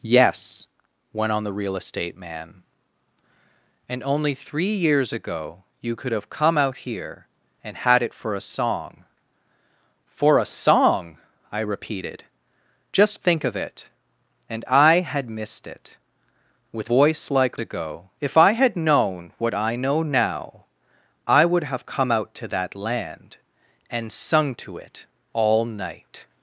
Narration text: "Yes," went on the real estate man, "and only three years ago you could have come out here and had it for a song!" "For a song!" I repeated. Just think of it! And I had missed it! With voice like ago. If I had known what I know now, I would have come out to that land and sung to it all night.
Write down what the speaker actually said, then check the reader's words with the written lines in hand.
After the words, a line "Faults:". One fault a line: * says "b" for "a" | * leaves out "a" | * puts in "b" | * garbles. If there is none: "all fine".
"Yes," went on the real estate man, "and only three years ago you could have come out here and had it for a song!" "For a song!" I repeated. Just think of it! And I had missed it! With voice like ago. If I had known what I know now, I would have come out to that land and sung to it all night.
Faults:
all fine